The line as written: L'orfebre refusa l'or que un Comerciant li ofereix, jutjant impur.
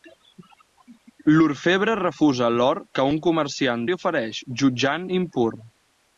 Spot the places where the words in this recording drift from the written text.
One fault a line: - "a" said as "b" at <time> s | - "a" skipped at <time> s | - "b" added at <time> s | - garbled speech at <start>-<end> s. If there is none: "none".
none